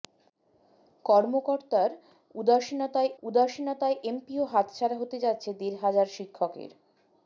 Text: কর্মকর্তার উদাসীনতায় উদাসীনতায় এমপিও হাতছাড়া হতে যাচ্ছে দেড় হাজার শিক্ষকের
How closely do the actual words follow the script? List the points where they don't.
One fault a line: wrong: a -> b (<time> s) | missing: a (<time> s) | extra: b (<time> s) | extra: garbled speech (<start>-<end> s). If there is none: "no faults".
no faults